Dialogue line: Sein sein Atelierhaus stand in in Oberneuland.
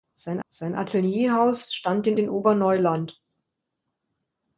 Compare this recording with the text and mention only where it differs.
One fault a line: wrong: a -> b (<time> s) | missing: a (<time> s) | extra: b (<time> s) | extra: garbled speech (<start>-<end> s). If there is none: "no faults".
no faults